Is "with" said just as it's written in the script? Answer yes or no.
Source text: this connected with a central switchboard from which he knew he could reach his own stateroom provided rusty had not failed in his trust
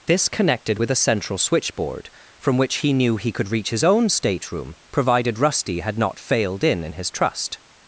yes